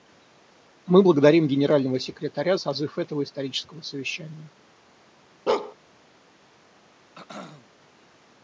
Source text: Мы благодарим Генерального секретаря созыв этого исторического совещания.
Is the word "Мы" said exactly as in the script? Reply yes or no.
yes